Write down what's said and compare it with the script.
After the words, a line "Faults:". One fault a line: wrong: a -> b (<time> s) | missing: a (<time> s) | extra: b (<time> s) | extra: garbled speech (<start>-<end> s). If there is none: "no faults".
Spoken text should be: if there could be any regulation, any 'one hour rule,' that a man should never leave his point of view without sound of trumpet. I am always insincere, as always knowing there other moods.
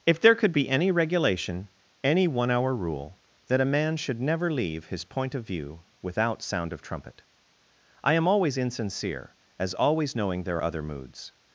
if there could be any regulation, any 'one hour rule,' that a man should never leave his point of view without sound of trumpet. I am always insincere, as always knowing there other moods.
Faults:
no faults